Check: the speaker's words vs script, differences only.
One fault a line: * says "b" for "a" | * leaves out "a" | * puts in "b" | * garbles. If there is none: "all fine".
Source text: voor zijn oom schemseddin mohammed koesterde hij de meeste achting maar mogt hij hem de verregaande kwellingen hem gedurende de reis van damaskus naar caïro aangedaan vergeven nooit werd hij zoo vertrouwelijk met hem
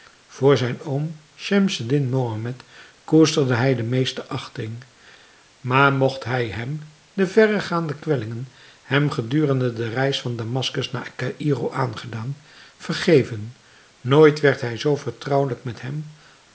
all fine